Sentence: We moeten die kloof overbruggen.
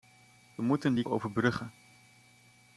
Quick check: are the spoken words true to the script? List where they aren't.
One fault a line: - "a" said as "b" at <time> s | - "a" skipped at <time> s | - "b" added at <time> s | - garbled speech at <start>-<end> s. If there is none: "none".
- "kloof" skipped at 1.0 s